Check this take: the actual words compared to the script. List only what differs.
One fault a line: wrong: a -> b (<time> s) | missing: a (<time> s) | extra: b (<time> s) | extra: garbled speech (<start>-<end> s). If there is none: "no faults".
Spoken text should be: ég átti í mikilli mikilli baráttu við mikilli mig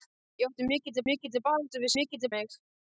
no faults